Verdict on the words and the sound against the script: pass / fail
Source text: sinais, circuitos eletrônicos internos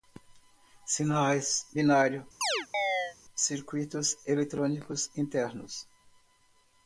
fail